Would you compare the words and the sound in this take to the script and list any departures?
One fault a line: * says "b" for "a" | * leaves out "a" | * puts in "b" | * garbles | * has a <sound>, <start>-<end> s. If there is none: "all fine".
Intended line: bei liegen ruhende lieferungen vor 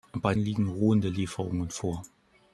all fine